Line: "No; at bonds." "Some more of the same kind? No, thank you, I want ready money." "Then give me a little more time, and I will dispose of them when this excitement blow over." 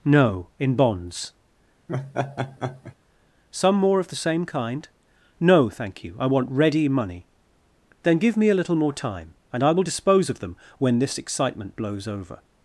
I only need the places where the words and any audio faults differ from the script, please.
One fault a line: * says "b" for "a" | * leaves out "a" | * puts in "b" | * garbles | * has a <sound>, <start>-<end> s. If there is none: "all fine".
* says "in" for "at"
* has a laugh, 1.9-3.0 s
* says "blows" for "blow"